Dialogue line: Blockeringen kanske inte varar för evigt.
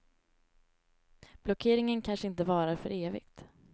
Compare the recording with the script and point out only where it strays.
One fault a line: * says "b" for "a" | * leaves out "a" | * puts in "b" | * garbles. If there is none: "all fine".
all fine